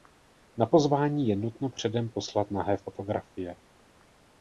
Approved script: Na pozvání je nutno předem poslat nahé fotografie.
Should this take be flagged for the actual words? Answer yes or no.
no